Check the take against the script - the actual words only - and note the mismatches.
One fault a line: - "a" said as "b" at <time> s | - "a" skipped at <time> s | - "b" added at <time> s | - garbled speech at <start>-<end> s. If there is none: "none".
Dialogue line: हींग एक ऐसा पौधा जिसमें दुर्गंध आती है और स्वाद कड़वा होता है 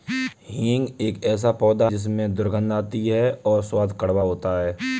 none